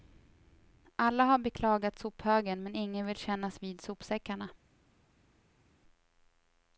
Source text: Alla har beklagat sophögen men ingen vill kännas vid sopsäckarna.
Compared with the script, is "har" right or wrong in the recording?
right